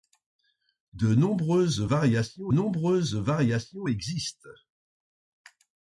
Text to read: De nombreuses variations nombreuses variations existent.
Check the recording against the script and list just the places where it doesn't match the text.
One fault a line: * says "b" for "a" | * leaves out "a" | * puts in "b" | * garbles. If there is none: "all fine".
all fine